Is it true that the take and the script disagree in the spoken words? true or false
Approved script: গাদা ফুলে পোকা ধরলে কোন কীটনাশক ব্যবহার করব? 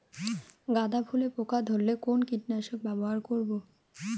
false